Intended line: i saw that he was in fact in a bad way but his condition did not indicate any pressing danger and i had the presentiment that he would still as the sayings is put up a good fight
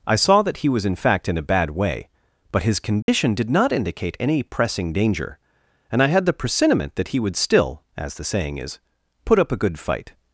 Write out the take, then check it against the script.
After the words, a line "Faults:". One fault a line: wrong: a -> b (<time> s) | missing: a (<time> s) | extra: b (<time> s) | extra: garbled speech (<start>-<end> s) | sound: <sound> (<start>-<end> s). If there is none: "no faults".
i saw that he was in fact in a bad way but his condition did not indicate any pressing danger and i had the presentiment that he would still as the saying is put up a good fight
Faults:
sound: dropout (3.0-3.1 s)
wrong: sayings -> saying (8.2 s)